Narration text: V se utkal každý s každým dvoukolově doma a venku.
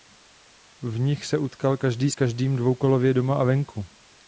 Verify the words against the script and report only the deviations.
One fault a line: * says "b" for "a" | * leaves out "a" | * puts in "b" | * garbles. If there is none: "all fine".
* puts in "nich"